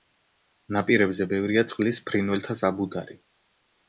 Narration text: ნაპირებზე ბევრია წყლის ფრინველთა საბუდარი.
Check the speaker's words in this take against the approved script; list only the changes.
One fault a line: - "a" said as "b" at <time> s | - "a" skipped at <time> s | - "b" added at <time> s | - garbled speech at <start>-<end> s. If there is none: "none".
none